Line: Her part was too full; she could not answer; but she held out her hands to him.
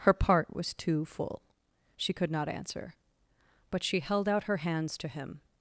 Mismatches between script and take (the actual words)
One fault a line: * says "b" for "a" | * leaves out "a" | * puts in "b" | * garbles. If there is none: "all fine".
all fine